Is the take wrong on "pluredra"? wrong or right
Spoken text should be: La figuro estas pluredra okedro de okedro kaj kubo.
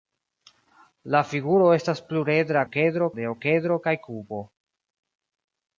right